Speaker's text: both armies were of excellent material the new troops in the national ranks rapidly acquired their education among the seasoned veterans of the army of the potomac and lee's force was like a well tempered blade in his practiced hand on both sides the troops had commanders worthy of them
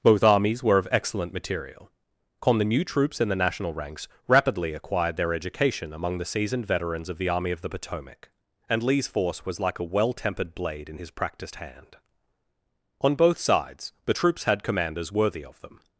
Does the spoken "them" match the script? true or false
true